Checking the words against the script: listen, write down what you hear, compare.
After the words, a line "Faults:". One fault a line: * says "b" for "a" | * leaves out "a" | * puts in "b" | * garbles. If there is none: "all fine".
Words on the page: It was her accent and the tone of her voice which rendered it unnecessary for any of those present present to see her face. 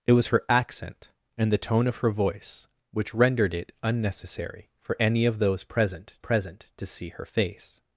It was her accent and the tone of her voice which rendered it unnecessary for any of those present present to see her face.
Faults:
all fine